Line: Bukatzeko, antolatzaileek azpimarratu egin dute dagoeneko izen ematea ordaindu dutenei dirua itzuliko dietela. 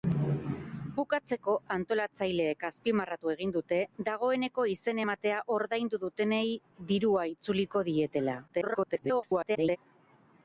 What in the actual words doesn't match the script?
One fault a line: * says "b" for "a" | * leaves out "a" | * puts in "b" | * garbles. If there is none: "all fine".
* garbles